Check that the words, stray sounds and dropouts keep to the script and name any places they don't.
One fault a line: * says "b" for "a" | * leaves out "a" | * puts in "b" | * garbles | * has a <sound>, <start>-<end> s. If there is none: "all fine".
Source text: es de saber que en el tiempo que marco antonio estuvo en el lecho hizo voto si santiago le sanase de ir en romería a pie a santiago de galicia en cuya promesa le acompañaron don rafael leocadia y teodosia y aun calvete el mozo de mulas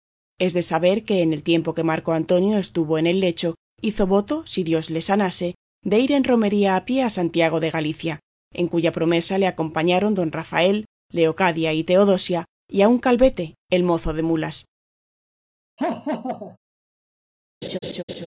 * says "dios" for "santiago"
* has a laugh, 15.8-16.6 s
* has a laugh, 17.6-18.3 s